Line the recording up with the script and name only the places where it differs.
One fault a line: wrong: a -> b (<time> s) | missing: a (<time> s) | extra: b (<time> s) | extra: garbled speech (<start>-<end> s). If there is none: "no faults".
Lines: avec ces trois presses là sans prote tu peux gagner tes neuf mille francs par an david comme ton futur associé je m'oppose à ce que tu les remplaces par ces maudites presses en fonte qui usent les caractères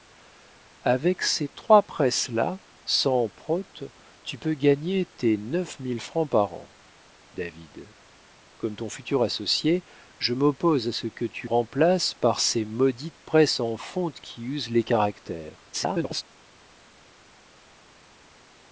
missing: les (11.5 s)
extra: garbled speech (15.7-16.2 s)